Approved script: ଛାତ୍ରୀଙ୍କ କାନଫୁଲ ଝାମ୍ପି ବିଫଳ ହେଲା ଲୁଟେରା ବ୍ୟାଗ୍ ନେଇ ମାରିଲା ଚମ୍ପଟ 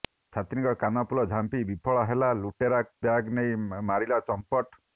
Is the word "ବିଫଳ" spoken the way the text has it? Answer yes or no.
yes